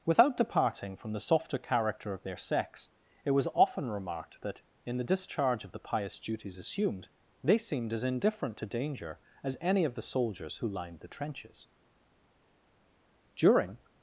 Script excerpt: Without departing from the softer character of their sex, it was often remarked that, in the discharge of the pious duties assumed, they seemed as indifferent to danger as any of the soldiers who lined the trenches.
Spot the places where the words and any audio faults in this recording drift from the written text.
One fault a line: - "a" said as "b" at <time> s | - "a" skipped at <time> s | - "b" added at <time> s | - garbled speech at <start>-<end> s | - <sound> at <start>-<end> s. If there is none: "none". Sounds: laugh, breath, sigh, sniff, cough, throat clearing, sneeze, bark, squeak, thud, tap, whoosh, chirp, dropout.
- "During" added at 13.4 s